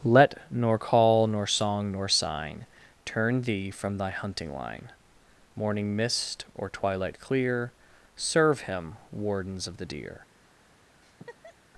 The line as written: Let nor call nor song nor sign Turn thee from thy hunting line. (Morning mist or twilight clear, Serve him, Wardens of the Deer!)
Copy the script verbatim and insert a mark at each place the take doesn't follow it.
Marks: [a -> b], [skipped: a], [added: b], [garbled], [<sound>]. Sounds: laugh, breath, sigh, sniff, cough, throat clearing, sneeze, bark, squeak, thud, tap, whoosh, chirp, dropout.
Let nor call nor song nor sign Turn thee from thy hunting line. (Morning mist or twilight clear, Serve him, Wardens of the Deer!) [laugh]